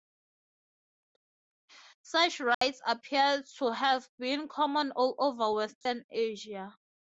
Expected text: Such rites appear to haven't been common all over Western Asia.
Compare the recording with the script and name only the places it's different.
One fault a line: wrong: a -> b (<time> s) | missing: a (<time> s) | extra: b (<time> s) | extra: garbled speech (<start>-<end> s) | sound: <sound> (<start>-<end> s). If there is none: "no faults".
sound: dropout (2.5-2.6 s)
wrong: haven't -> have (3.7 s)
sound: dropout (5.8-5.9 s)